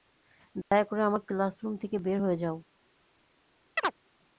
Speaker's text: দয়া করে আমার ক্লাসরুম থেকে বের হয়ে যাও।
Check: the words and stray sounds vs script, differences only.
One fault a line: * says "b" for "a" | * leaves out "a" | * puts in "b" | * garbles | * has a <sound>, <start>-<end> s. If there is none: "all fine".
* has a dropout, 0.6-0.7 s
* has a chirp, 3.8-3.9 s